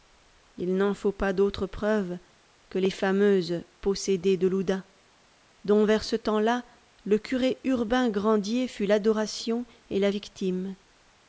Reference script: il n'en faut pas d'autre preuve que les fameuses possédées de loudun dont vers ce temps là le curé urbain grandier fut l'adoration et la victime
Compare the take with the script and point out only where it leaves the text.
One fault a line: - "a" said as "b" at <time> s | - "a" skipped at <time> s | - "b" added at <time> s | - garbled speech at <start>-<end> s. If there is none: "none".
none